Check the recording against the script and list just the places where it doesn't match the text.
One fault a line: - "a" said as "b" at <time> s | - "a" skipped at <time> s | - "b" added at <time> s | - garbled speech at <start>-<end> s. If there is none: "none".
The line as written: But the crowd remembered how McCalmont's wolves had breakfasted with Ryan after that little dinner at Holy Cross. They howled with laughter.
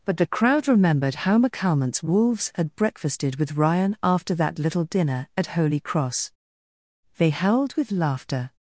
none